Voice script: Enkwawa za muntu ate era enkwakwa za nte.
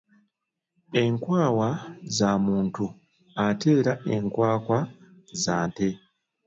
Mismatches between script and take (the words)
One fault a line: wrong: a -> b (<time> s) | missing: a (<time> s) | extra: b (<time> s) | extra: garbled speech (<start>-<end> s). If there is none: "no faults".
no faults